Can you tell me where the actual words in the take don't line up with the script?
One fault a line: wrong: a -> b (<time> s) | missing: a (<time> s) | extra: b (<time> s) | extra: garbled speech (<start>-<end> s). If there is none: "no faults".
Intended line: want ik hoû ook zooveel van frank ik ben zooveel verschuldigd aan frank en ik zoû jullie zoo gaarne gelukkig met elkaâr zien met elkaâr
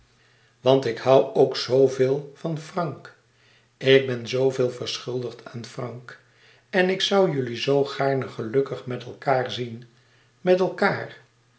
no faults